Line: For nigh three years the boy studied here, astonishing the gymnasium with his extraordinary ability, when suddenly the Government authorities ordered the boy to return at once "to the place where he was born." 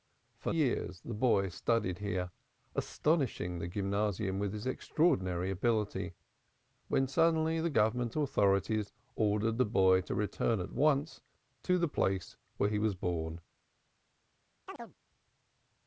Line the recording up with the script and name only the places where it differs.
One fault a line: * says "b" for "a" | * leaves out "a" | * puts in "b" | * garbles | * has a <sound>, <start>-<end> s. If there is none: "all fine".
* leaves out "nigh three"
* has a chirp, 14.7-14.9 s